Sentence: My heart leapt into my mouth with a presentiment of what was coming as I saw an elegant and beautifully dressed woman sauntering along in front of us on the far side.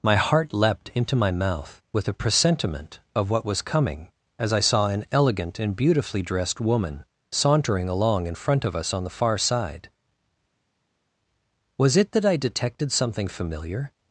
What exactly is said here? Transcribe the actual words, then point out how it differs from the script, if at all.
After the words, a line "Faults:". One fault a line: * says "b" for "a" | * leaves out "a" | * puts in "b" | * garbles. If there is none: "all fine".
My heart leapt into my mouth with a presentiment of what was coming as I saw an elegant and beautifully dressed woman sauntering along in front of us on the far side. Was it that I detected something familiar
Faults:
* puts in "Was it that I detected something familiar"